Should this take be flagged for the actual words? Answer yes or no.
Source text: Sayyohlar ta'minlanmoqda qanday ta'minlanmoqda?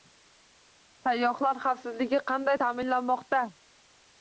yes